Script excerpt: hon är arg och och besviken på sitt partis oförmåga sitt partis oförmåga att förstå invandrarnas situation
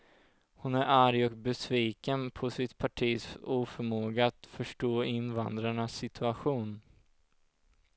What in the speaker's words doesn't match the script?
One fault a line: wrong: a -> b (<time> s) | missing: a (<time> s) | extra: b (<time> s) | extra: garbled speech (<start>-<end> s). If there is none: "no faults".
missing: och (1.4 s)
missing: sitt partis oförmåga (4.3 s)